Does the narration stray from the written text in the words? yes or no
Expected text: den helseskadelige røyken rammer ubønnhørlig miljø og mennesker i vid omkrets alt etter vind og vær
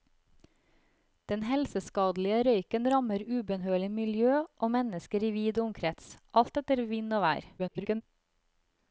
yes